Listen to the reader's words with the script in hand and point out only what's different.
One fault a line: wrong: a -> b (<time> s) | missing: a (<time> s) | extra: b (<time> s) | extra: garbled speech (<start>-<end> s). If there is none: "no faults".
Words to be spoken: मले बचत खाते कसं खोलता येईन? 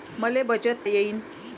missing: खाते कसं खोलता (0.9 s)